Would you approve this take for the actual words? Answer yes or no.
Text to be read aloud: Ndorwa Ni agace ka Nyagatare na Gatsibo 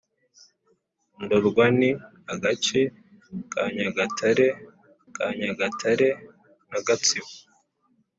no